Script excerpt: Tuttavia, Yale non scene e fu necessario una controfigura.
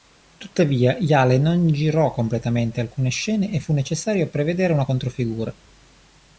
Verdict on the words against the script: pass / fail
fail